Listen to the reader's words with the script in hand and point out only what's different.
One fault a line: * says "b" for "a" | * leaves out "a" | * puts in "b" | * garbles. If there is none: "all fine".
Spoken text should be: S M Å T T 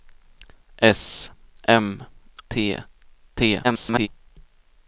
* leaves out "Å"
* garbles